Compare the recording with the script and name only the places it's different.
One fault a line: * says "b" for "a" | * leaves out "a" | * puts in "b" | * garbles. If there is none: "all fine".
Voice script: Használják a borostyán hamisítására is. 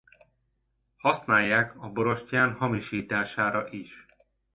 all fine